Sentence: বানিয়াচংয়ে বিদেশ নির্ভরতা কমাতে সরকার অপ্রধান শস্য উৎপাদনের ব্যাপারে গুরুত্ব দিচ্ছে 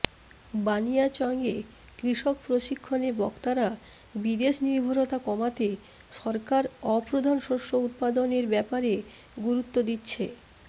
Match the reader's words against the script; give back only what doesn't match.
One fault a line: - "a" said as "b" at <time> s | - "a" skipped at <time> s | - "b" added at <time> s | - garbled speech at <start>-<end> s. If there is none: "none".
- "কৃষক প্রশিক্ষণে বক্তারা" added at 2.0 s